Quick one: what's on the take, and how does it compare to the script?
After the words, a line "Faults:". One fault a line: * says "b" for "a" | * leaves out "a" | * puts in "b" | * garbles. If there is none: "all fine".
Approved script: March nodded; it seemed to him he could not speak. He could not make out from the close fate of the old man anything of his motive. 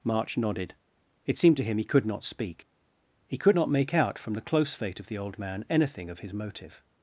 March nodded; it seemed to him he could not speak. He could not make out from the close fate of the old man anything of his motive.
Faults:
all fine